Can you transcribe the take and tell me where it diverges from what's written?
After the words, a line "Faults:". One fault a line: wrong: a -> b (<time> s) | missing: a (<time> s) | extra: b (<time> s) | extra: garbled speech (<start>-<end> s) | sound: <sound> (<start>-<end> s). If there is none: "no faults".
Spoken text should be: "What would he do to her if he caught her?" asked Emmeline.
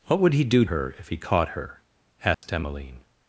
"What would he do her if he caught her?" asked Emmeline.
Faults:
missing: to (0.7 s)
sound: dropout (2.3-2.4 s)